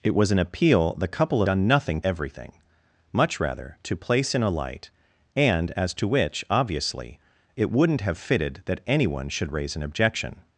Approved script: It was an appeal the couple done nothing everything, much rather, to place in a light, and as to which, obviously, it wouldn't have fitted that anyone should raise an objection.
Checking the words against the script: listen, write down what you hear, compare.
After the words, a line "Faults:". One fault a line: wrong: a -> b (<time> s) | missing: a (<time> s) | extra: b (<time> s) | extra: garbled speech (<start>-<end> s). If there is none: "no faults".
It was an appeal the couple done nothing everything, much rather, to place in a light, and as to which, obviously, it wouldn't have fitted that anyone should raise an objection.
Faults:
no faults